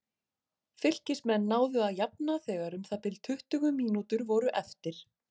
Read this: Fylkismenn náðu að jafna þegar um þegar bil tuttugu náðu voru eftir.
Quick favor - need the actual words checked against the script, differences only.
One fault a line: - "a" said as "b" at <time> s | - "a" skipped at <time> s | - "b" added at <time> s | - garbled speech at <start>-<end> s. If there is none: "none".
- "þegar" said as "það" at 2.9 s
- "náðu" said as "mínútur" at 3.8 s